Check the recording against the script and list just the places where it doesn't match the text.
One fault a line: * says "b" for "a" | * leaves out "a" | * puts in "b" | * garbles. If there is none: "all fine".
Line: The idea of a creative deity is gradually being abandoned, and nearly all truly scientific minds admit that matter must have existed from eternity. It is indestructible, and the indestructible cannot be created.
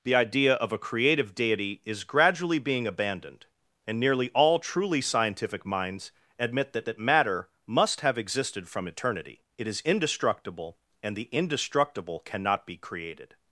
* puts in "that"